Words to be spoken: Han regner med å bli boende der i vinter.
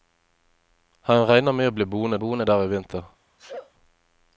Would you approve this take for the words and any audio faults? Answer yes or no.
no